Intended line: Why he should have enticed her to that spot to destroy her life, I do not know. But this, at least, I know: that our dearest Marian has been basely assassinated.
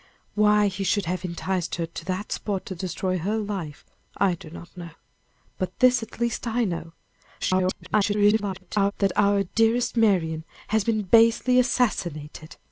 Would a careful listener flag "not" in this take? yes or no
no